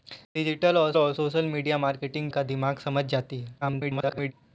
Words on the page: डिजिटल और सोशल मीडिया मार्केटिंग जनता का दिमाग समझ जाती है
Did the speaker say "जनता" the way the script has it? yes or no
no